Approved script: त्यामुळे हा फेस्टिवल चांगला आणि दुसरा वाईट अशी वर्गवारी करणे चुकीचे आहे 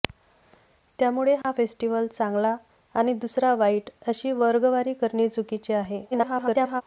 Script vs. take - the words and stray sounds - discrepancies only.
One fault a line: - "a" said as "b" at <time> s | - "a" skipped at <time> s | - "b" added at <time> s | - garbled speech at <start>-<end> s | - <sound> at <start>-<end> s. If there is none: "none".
- dropout at 1.4-1.4 s
- garbled speech at 6.1-6.8 s